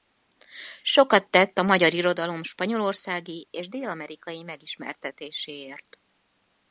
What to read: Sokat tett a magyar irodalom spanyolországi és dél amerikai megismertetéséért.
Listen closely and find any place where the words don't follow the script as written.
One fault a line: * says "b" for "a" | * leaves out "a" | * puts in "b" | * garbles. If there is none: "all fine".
all fine